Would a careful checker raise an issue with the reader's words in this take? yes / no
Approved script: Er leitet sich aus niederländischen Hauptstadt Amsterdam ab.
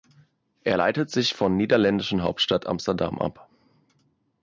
yes